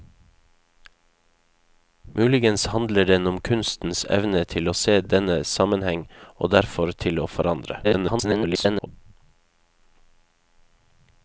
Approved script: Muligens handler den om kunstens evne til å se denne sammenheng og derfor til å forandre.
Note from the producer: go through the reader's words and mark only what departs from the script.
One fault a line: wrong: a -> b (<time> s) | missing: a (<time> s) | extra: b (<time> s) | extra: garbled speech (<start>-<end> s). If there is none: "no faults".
extra: garbled speech (7.8-8.9 s)